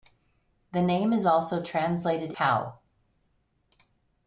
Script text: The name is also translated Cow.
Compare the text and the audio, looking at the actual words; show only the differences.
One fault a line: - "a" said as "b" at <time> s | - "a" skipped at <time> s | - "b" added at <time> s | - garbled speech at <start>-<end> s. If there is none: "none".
none